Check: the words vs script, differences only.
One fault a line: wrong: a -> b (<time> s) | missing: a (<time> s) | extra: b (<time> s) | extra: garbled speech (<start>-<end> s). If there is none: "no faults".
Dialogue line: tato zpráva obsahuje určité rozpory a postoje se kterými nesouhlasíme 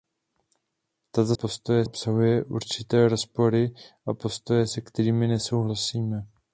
wrong: zpráva -> postoje (1.3 s)